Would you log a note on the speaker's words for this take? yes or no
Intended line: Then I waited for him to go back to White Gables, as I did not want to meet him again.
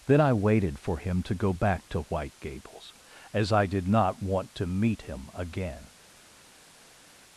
no